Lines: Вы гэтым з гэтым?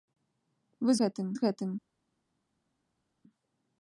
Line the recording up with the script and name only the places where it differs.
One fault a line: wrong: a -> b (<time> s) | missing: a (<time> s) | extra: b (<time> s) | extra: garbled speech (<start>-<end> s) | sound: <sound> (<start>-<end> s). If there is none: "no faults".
no faults